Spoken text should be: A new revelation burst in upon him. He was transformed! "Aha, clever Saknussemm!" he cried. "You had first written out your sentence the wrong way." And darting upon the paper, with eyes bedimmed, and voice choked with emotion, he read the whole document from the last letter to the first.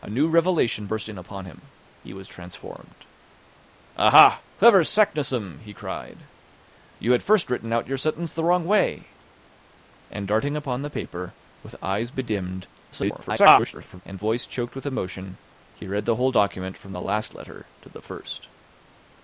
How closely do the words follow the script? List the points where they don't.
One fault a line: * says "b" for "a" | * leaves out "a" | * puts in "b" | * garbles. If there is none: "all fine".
* garbles